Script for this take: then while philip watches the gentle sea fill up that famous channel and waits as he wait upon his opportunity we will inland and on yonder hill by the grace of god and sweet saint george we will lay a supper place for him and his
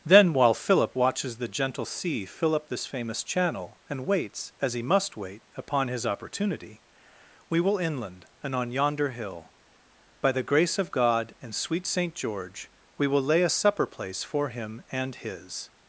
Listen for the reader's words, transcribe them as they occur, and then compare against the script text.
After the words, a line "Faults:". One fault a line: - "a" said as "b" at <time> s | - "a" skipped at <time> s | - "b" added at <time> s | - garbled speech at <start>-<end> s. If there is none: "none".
then while philip watches the gentle sea fill up this famous channel and waits as he must wait upon his opportunity we will inland and on yonder hill by the grace of god and sweet saint george we will lay a supper place for him and his
Faults:
- "that" said as "this" at 2.7 s
- "must" added at 4.8 s